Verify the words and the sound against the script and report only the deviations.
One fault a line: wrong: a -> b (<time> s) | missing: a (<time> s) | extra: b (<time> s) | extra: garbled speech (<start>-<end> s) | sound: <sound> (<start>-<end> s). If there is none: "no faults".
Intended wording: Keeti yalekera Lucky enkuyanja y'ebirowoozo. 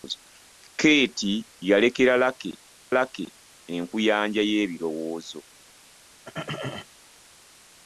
extra: Lucky (3.0 s)
sound: throat clearing (6.2-6.9 s)